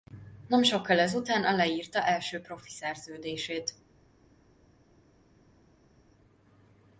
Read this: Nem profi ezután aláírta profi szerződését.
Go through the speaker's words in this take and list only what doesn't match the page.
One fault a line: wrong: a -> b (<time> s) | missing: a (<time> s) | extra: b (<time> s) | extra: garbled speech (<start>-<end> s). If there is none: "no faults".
wrong: profi -> sokkal (0.6 s)
extra: első (2.0 s)